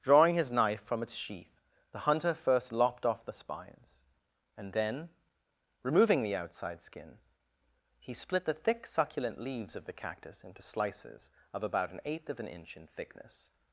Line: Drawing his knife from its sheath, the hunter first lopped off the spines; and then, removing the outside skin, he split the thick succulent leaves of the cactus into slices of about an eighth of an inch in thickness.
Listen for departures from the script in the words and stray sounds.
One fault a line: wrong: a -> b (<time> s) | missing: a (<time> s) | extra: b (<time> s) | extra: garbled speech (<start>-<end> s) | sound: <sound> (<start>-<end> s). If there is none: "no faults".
no faults